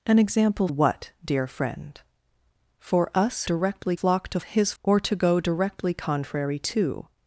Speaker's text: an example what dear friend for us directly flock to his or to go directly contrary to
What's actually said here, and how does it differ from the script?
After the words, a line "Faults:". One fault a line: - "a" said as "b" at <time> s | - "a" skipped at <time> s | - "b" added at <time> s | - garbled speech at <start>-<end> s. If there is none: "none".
an example what dear friend for us directly flock to his or to go directly contrary to
Faults:
none